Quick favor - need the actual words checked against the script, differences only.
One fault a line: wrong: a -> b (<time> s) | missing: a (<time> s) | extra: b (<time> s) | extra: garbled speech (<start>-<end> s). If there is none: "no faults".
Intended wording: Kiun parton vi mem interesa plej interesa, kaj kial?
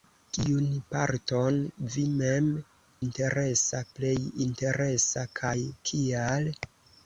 no faults